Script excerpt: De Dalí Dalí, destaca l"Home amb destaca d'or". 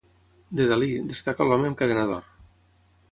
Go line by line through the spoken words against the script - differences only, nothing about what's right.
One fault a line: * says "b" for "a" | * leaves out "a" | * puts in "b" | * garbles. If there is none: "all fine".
* leaves out "Dalí"
* says "cadena" for "destaca"